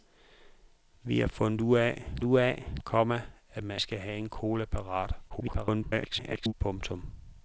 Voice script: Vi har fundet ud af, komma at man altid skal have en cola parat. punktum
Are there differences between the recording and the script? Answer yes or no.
yes